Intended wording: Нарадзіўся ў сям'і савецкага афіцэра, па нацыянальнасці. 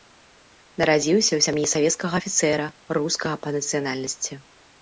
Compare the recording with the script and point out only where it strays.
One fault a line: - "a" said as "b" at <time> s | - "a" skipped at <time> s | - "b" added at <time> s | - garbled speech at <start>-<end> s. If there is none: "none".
- "рускага" added at 3.0 s